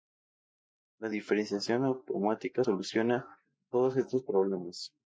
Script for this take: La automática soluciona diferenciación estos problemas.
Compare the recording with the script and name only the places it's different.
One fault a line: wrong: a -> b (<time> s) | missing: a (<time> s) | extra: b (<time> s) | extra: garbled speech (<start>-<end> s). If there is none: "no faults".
extra: diferenciación (1.1 s)
wrong: diferenciación -> todos (3.7 s)